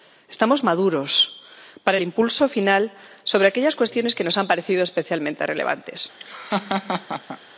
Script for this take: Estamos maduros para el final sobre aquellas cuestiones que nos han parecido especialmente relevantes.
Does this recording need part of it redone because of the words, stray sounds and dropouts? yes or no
yes